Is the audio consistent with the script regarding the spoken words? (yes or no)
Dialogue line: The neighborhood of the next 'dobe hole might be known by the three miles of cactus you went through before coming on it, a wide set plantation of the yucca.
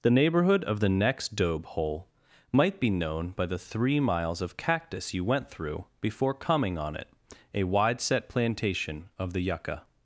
yes